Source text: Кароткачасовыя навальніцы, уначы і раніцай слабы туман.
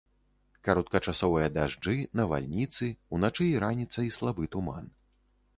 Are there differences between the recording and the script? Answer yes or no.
yes